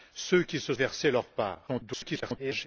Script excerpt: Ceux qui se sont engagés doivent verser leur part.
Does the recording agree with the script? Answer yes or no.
no